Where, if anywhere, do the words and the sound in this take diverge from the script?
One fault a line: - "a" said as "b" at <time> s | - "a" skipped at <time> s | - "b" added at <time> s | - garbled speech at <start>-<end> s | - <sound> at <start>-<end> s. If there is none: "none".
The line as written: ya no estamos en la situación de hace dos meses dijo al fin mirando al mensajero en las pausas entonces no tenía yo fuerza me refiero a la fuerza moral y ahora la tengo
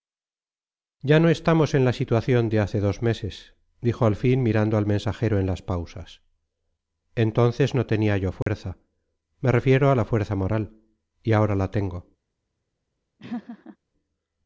- dropout at 8.4-8.5 s
- laugh at 13.2-13.8 s